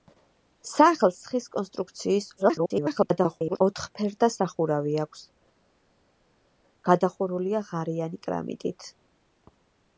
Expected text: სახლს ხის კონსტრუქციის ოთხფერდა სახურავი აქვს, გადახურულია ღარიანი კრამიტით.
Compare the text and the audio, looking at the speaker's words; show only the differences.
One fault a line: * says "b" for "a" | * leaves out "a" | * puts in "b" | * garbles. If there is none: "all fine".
* garbles